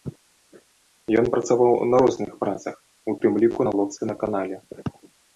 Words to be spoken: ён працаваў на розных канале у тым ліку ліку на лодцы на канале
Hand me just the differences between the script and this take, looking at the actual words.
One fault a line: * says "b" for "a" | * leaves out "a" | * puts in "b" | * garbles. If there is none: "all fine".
* says "працах" for "канале"
* leaves out "ліку"